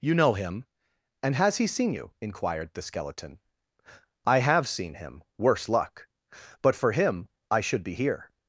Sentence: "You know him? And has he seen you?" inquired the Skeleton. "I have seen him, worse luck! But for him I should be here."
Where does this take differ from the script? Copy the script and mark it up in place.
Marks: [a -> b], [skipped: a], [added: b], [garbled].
"You know him? And has he seen you?" inquired the Skeleton. "I have seen him, worse luck! But for him I should be here."